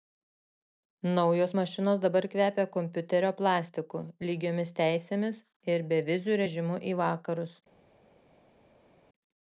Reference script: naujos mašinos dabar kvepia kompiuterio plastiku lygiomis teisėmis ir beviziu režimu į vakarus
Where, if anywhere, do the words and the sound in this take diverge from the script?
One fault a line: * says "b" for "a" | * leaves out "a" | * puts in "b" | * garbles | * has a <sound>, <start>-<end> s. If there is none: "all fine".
all fine